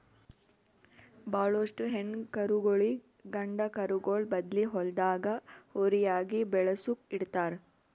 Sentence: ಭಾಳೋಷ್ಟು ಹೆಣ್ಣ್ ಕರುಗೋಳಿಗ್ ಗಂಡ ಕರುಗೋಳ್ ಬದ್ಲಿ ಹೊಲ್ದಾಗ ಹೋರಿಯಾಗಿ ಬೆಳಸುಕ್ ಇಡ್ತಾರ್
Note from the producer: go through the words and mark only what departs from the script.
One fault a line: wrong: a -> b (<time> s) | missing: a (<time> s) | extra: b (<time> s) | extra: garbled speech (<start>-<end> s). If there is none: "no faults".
no faults